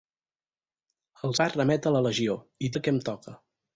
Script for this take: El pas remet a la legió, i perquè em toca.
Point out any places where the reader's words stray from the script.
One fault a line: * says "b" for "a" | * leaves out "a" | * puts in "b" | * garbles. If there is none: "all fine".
all fine